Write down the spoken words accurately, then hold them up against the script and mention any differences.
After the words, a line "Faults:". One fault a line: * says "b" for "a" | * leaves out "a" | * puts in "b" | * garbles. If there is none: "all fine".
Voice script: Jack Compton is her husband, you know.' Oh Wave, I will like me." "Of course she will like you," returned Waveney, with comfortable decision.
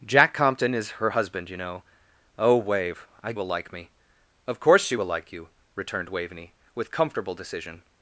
Jack Compton is her husband, you know.' Oh Wave, I will like me." "Of course she will like you," returned Waveney, with comfortable decision.
Faults:
all fine